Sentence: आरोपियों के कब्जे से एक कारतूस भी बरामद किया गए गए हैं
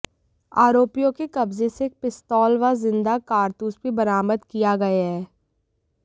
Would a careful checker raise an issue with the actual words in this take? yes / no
yes